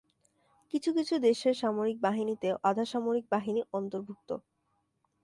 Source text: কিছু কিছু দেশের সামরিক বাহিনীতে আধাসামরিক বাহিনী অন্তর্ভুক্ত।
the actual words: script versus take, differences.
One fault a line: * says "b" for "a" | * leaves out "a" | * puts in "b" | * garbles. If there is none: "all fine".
all fine